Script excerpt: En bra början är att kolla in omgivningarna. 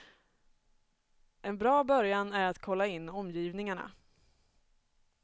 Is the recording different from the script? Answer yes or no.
no